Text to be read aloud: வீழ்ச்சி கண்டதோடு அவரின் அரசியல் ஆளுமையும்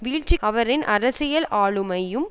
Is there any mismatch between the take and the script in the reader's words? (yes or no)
yes